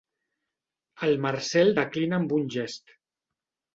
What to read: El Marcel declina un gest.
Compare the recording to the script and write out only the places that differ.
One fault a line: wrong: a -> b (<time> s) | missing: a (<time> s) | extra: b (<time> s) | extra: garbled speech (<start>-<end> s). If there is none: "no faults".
extra: amb (2.2 s)